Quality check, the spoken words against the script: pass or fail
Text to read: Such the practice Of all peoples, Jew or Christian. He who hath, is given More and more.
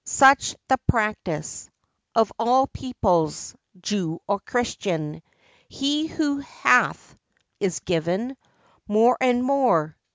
pass